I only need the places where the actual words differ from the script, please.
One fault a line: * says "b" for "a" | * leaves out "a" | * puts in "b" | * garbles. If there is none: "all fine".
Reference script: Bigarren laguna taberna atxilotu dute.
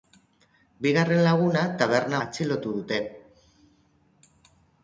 all fine